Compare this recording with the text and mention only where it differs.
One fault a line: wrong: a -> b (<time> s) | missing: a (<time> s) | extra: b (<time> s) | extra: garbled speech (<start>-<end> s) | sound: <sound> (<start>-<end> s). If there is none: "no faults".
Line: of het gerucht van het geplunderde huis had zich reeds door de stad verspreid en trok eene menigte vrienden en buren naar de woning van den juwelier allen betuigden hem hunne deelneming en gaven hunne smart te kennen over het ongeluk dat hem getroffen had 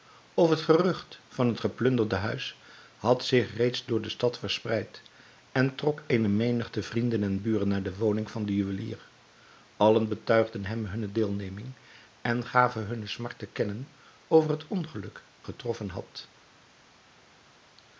missing: dat hem (15.2 s)